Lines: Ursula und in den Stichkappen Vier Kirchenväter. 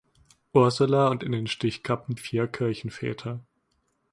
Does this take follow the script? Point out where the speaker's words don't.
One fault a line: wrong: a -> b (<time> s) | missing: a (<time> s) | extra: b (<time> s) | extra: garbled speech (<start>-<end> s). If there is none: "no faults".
no faults